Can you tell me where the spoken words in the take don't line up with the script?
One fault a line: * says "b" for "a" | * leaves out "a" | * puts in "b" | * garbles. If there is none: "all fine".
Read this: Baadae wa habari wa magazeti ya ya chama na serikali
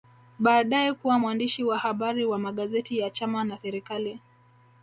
* puts in "kuwa mwandishi"
* leaves out "ya"